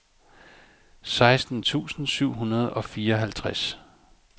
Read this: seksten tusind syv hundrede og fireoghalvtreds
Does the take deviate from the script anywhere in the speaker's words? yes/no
no